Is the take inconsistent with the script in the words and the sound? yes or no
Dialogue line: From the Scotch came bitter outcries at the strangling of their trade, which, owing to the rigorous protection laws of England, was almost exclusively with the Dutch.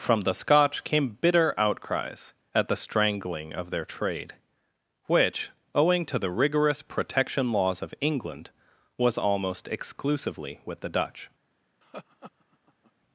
yes